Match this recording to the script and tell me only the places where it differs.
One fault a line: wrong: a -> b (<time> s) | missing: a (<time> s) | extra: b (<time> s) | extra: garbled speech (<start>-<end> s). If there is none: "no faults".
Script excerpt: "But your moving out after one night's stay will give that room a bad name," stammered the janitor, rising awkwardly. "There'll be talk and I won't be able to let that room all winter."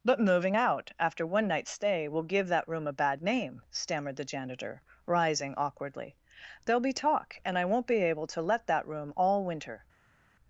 missing: your (0.2 s)